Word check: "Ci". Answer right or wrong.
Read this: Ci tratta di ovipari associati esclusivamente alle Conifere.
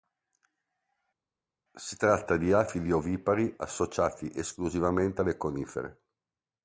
wrong